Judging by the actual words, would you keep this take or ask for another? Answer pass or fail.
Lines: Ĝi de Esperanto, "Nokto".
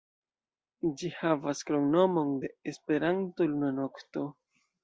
fail